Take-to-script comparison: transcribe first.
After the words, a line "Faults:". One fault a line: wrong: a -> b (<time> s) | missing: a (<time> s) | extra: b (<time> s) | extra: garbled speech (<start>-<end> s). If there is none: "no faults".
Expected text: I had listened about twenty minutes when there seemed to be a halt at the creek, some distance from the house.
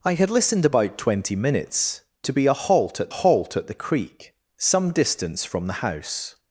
I had listened about twenty minutes to be a halt at halt at the creek, some distance from the house.
Faults:
missing: when there seemed (2.0 s)
extra: halt at (3.1 s)